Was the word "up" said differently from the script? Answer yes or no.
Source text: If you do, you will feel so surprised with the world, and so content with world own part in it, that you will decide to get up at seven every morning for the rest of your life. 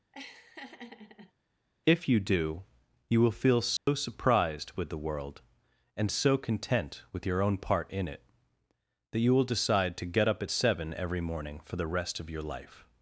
no